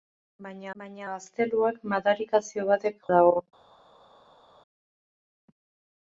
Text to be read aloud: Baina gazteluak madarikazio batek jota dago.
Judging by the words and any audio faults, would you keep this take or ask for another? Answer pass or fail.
fail